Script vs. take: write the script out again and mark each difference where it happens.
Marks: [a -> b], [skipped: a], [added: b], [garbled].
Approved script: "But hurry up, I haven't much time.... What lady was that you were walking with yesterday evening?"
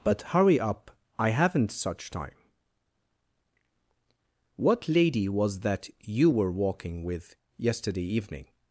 "But hurry up, I haven't [much -> such] time.... What lady was that you were walking with yesterday evening?"